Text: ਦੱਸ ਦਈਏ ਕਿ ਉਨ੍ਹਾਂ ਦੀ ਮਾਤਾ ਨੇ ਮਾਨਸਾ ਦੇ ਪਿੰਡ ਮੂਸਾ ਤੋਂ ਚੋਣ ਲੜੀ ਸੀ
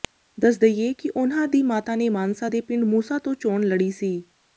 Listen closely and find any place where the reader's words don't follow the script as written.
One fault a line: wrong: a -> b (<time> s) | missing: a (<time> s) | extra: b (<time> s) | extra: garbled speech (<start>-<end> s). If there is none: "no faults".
no faults